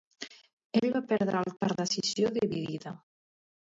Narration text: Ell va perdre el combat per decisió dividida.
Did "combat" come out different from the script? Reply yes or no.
yes